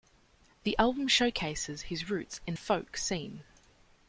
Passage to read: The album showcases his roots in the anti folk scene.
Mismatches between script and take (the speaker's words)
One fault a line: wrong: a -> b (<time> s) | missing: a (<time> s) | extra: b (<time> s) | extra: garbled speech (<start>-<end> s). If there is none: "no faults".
missing: the anti (2.5 s)